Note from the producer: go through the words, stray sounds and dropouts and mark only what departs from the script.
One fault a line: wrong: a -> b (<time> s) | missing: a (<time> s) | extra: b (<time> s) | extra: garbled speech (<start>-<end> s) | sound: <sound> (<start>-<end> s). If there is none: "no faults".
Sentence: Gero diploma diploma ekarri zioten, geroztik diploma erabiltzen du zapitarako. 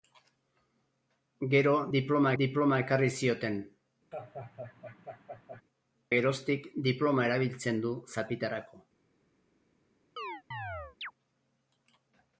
sound: laugh (4.1-5.6 s)
sound: chirp (10.2-11.1 s)